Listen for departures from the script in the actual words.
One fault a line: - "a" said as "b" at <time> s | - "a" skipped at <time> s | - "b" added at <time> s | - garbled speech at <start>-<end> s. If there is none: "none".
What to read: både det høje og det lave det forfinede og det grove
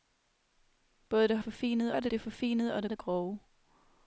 - "høje" said as "forfinede" at 1.4 s
- "lave" skipped at 2.1 s
- "det" added at 2.9 s